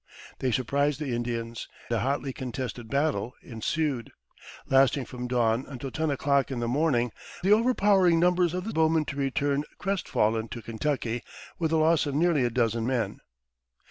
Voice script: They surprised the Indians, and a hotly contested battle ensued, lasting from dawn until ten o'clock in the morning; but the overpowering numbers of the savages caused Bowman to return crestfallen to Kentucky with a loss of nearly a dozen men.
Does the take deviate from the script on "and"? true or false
true